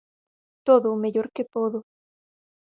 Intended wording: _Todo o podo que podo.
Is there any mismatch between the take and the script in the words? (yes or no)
yes